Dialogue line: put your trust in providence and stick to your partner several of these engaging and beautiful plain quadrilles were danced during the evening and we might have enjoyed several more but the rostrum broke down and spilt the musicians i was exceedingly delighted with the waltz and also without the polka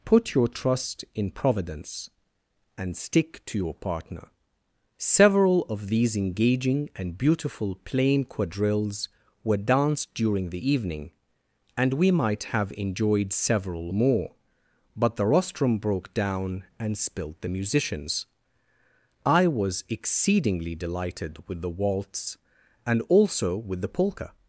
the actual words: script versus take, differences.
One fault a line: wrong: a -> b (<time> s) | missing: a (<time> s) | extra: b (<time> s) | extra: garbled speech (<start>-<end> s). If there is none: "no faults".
wrong: without -> with (23.6 s)